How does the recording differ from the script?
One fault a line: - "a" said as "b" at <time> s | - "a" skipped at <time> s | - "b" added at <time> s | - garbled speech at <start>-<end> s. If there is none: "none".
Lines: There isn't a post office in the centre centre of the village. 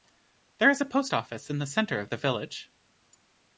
- "isn't" said as "is" at 0.7 s
- "centre" skipped at 2.0 s